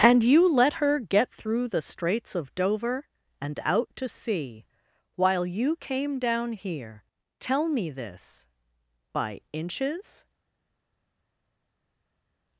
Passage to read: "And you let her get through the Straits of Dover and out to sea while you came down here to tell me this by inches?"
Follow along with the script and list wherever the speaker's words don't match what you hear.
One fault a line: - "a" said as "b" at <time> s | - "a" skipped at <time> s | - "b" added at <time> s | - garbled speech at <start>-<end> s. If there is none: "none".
- "to" skipped at 7.0 s